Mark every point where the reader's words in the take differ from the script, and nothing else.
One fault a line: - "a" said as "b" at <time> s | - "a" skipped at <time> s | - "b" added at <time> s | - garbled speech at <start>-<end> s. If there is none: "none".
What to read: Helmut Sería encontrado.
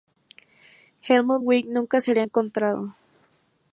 - "Wick nunca" added at 1.4 s